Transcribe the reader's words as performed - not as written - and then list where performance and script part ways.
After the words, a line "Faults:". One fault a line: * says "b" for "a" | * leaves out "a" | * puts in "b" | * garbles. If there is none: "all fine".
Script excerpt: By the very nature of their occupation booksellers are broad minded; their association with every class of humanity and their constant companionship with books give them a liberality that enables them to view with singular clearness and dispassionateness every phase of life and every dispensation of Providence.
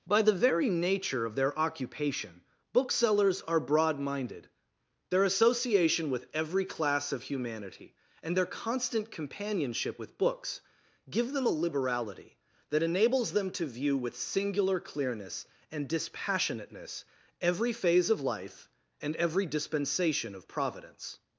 By the very nature of their occupation booksellers are broad minded; their association with every class of humanity and their constant companionship with books give them a liberality that enables them to view with singular clearness and dispassionateness every phase of life and every dispensation of Providence.
Faults:
all fine